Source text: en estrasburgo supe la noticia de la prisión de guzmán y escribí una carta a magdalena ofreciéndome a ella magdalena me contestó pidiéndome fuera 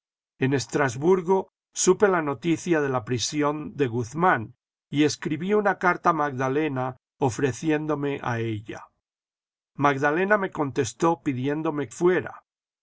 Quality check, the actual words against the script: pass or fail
pass